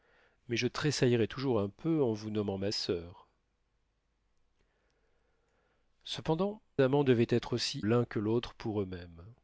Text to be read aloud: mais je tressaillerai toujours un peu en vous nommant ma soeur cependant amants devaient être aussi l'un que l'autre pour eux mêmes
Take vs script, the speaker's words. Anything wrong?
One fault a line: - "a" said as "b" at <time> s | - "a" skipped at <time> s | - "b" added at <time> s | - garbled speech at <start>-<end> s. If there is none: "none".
none